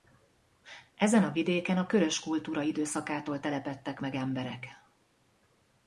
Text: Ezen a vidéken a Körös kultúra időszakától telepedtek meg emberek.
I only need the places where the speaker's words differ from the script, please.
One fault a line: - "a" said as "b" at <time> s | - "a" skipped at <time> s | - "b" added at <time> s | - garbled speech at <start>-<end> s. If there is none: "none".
none